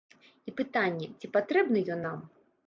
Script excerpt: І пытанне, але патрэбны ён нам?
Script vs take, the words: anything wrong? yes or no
yes